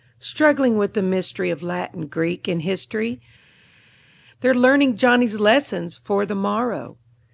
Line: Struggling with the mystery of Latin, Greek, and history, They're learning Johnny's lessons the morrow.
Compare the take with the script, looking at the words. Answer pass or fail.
fail